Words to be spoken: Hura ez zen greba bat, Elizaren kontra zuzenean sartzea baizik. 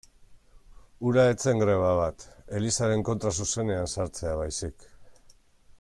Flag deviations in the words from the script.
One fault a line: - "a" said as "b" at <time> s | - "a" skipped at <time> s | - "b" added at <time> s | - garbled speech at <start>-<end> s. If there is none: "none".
none